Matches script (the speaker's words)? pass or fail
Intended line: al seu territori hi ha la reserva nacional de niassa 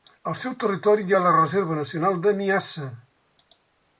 pass